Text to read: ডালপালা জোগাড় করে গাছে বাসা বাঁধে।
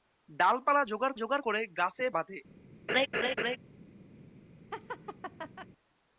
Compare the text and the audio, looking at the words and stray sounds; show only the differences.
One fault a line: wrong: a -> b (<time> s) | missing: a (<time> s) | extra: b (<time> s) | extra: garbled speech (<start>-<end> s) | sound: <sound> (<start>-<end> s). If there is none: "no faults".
extra: জোগাড় (1.2 s)
missing: বাসা (2.1 s)
sound: laugh (2.9-3.6 s)
sound: laugh (4.7-5.7 s)